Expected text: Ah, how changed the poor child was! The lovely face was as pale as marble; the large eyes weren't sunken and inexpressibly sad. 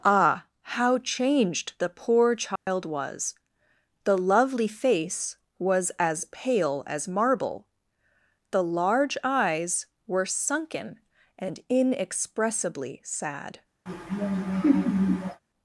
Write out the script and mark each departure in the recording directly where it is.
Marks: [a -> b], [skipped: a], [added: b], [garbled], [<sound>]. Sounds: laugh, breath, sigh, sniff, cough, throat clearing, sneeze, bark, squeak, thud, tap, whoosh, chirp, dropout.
Ah, how changed the poor child [dropout] was! The lovely face was as pale as marble; the large eyes [weren't -> were] sunken and inexpressibly sad. [laugh]